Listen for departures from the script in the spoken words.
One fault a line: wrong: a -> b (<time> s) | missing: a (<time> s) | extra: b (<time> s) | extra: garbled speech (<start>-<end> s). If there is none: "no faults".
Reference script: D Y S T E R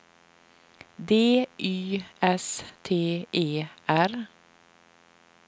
no faults